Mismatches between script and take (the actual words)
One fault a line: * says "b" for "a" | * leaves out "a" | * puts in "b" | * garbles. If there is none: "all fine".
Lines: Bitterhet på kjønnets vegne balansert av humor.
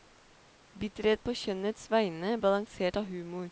all fine